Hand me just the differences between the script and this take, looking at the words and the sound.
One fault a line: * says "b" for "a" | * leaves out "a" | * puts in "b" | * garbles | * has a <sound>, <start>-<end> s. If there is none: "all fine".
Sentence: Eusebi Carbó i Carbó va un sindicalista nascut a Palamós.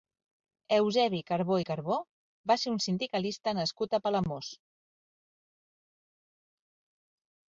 * puts in "ser"